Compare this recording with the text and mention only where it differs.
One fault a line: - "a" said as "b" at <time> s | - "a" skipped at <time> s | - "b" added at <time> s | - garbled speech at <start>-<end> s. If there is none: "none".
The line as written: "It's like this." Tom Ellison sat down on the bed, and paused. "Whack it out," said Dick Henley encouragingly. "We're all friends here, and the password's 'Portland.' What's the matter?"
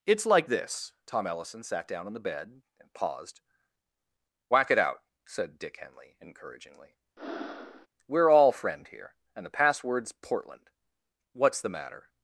- "friends" said as "friend" at 8.5 s